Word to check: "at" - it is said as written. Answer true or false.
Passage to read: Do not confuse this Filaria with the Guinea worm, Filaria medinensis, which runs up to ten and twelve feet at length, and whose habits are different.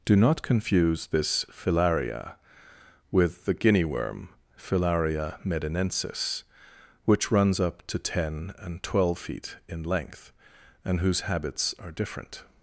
false